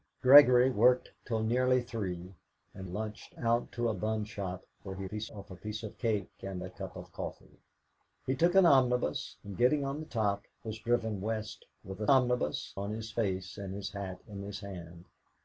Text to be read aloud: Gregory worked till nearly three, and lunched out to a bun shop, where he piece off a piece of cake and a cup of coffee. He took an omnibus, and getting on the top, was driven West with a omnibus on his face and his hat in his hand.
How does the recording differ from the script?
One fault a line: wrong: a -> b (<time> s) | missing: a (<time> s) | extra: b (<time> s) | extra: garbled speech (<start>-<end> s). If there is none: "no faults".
no faults